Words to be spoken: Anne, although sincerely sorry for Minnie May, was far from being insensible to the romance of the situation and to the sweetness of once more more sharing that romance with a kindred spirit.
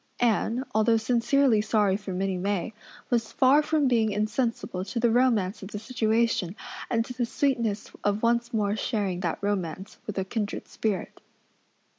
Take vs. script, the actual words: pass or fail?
fail